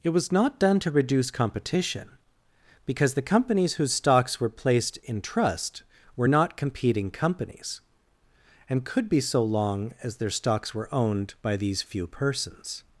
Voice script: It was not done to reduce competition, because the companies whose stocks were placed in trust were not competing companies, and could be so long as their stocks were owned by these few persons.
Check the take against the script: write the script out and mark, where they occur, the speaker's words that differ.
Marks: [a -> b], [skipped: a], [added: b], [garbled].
It was not done to reduce competition, because the companies whose stocks were placed in trust were not competing companies, and could be so long as their stocks were owned by these few persons.